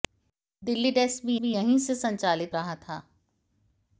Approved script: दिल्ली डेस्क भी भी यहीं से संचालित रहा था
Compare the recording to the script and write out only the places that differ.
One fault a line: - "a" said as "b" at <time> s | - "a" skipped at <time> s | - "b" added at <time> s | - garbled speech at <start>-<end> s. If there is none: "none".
none